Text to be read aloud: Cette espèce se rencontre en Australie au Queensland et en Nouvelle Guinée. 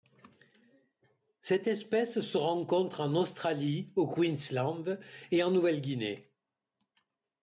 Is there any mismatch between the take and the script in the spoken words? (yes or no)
no